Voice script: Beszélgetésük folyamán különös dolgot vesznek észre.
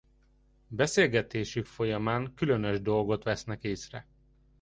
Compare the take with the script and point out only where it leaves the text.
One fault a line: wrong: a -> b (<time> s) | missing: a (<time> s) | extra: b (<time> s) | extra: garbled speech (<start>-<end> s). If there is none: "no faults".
no faults